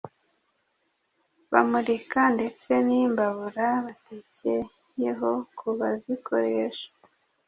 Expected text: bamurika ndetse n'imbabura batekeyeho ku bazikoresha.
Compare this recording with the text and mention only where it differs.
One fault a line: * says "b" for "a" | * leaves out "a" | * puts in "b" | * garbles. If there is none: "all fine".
all fine